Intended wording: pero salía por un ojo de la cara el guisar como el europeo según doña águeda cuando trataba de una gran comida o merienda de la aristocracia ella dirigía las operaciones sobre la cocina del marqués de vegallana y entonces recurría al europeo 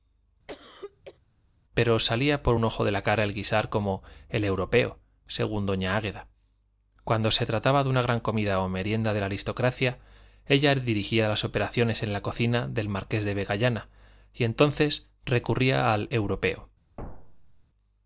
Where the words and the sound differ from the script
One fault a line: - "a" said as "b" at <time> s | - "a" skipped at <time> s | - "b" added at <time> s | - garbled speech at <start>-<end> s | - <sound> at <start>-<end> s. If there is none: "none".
- cough at 0.5-1.2 s
- "se" added at 7.3 s
- "sobre" said as "en" at 12.0 s
- thud at 17.0-17.6 s